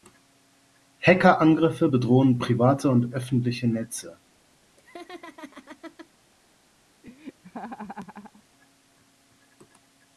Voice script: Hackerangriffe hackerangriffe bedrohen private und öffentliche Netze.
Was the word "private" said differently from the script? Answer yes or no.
no